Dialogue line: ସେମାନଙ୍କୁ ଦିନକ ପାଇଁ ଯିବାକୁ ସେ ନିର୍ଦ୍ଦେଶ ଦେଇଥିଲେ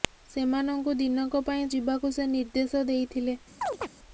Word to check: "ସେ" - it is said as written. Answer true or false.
true